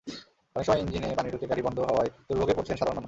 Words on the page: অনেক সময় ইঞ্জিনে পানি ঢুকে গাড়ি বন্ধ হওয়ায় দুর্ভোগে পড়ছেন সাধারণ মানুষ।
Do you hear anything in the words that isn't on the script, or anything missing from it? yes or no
no